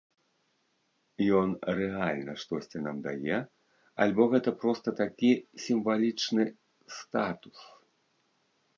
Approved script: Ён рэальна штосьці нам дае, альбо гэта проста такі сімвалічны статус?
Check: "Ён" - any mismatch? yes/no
no